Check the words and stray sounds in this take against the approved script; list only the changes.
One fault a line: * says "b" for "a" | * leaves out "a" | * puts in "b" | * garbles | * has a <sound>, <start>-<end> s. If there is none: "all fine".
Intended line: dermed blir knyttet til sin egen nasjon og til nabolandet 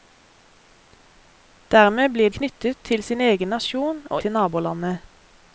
all fine